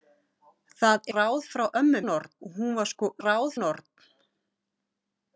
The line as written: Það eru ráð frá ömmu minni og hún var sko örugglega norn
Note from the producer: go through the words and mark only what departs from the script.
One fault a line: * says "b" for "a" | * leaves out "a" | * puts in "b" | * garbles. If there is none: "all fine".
* leaves out "eru"
* says "norn" for "minni"
* says "ráð" for "örugglega"